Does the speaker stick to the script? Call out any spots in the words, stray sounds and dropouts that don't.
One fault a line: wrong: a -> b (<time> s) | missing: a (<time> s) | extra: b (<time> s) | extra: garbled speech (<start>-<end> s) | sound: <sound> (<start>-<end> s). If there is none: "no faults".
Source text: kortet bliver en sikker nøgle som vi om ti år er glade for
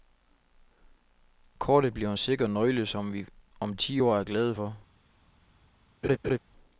sound: laugh (6.0-6.4 s)